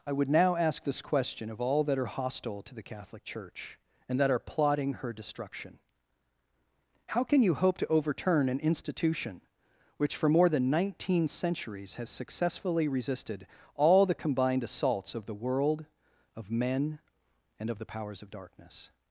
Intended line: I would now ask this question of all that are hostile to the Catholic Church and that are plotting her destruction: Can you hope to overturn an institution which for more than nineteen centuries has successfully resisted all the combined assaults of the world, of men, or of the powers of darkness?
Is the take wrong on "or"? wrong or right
wrong